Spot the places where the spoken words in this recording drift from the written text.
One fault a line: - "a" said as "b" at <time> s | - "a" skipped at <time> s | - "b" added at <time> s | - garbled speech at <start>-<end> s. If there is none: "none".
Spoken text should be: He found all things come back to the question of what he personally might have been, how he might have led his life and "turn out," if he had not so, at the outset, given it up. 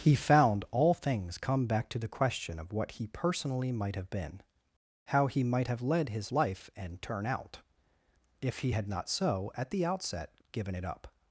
none